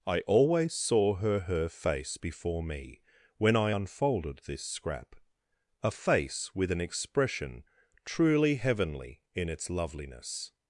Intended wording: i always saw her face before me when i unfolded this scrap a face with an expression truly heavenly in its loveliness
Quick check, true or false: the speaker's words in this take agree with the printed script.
false